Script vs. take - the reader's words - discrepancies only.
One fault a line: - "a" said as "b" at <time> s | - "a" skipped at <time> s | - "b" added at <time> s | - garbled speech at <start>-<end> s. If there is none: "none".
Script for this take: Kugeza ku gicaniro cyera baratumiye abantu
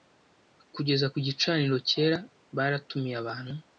none